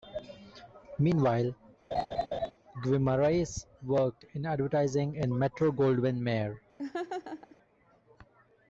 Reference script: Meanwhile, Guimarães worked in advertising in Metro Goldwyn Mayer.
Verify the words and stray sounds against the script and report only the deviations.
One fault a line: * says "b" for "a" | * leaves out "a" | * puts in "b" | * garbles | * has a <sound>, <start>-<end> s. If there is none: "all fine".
* has a laugh, 1.9-2.5 s
* has a laugh, 6.8-7.6 s